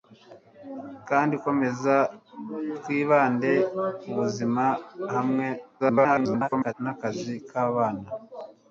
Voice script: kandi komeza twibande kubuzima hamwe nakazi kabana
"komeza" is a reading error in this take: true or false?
false